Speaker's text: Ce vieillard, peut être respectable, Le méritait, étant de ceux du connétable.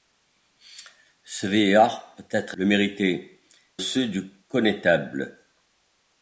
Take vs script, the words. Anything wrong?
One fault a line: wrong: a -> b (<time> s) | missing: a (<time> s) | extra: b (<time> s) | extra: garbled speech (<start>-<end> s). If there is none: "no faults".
missing: respectable (2.6 s)
missing: étant de (3.4 s)